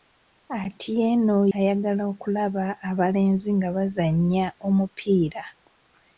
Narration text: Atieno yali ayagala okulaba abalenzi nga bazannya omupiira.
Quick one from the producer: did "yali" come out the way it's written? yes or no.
no